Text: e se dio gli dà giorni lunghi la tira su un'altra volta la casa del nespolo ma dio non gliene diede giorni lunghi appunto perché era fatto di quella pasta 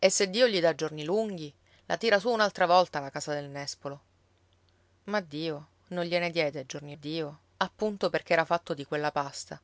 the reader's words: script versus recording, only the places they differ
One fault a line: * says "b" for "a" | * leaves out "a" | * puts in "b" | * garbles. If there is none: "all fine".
* says "dio" for "lunghi"